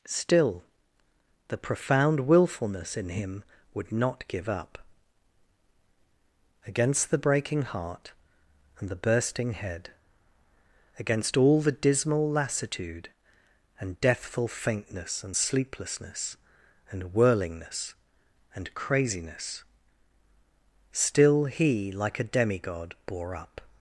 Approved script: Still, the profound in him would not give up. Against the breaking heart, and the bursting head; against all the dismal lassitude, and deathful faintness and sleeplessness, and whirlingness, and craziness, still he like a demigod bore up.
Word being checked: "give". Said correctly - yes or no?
yes